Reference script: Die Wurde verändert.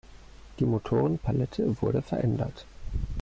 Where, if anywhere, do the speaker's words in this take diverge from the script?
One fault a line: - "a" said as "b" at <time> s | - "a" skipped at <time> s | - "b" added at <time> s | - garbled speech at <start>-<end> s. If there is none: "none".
- "Motorenpalette" added at 0.6 s